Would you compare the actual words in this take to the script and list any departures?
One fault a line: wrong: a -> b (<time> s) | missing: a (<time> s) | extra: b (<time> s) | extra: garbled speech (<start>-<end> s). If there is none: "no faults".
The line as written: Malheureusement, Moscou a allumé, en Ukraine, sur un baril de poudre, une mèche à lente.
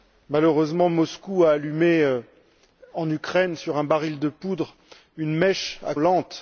no faults